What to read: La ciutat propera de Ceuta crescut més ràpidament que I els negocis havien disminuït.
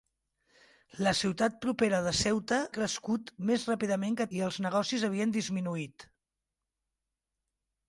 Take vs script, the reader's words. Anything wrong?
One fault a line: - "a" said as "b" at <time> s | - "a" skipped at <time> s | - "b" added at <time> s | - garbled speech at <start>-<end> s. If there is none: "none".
none